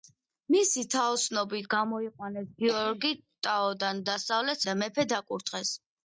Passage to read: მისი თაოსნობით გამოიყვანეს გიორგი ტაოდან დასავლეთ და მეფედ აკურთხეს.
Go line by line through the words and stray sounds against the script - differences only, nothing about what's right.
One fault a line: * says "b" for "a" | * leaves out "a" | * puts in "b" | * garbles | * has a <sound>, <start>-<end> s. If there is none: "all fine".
all fine